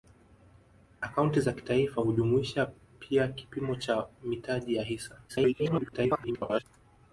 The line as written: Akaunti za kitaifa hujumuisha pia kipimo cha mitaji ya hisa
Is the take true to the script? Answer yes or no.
no